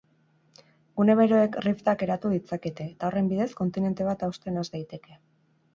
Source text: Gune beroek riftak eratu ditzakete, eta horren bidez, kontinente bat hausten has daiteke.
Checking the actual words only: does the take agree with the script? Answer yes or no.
yes